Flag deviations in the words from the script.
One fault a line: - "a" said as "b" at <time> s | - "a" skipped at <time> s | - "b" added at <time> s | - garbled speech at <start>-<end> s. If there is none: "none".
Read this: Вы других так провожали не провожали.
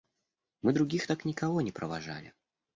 - "Вы" said as "Мы" at 0.6 s
- "провожали" said as "никого" at 1.2 s